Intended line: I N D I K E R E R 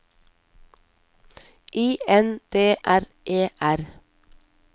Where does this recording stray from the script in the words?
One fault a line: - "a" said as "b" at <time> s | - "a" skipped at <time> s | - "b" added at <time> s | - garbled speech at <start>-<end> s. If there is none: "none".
- "I K E" skipped at 2.8 s